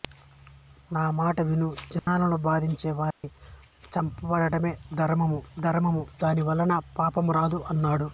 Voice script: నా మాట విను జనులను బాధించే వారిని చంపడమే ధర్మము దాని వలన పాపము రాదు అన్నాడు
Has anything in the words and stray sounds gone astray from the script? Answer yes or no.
yes